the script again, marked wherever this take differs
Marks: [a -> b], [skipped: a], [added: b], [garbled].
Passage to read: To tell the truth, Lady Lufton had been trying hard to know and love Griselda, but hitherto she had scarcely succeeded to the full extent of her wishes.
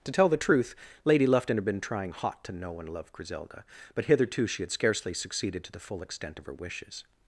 To tell the truth, Lady Lufton had been trying [hard -> hot] to know and love Griselda, but hitherto she had scarcely succeeded to the full extent of her wishes.